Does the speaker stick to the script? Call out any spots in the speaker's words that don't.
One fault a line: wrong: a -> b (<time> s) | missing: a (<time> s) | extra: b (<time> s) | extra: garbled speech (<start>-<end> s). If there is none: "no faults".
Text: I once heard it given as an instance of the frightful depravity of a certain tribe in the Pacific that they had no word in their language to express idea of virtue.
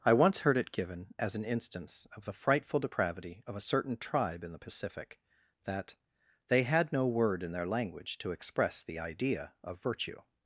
extra: the (8.8 s)